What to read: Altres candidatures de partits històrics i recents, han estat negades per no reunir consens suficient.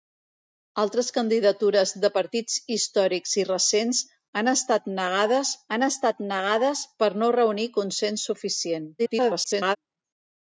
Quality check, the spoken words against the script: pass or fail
fail